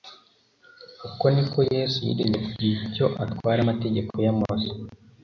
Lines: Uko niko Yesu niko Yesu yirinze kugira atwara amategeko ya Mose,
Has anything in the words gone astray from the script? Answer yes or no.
yes